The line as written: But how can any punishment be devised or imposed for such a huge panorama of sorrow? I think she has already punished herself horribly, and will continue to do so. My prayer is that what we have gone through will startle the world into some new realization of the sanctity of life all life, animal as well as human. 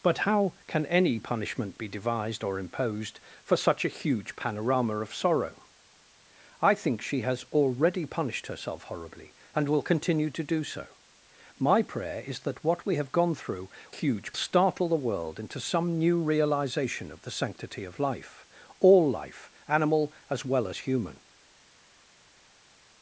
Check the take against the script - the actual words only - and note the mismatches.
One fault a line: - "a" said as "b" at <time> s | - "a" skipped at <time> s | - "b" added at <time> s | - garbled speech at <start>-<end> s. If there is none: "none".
- "will" said as "huge" at 13.9 s